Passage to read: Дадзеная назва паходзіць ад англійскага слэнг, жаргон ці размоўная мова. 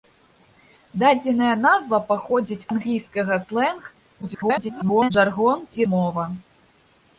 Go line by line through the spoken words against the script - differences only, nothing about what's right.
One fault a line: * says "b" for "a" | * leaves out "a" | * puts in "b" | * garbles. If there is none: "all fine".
* leaves out "ад"
* garbles
* leaves out "размоўная"